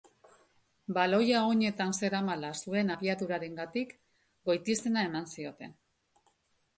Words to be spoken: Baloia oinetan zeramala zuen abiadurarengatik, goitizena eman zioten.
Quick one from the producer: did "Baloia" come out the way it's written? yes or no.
yes